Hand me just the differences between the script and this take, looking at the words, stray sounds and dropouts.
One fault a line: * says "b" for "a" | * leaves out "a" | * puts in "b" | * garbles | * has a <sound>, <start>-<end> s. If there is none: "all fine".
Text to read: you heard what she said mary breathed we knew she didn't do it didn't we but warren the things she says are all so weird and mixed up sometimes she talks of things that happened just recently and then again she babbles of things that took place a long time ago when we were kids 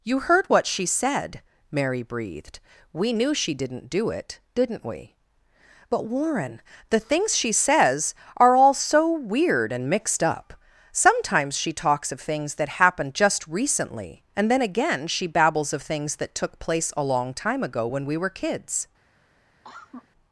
* has a cough, 19.6-20.1 s